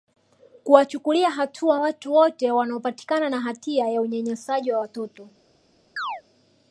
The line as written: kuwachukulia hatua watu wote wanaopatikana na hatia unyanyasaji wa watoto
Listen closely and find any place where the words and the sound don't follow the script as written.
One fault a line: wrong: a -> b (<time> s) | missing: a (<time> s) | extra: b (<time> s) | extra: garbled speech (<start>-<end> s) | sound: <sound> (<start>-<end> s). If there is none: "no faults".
extra: ya (3.9 s)
sound: chirp (6.0-6.2 s)